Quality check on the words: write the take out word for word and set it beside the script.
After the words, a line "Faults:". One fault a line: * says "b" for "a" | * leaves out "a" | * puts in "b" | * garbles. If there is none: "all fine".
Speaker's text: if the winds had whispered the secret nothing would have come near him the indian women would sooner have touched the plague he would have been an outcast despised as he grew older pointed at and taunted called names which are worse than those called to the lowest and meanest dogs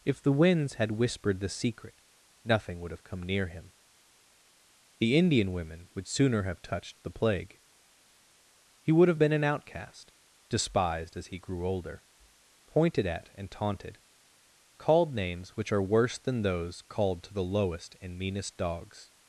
if the winds had whispered the secret nothing would have come near him the indian women would sooner have touched the plague he would have been an outcast despised as he grew older pointed at and taunted called names which are worse than those called to the lowest and meanest dogs
Faults:
all fine